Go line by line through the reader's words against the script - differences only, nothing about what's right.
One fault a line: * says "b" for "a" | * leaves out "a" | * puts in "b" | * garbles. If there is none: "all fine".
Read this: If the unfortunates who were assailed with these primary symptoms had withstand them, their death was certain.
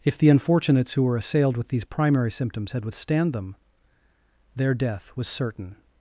all fine